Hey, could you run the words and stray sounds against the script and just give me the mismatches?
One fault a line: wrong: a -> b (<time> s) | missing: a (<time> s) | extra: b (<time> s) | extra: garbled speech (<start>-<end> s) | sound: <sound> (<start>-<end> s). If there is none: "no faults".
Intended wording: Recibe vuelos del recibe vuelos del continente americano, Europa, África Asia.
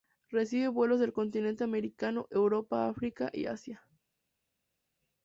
missing: recibe vuelos del (1.1 s)
extra: y (3.3 s)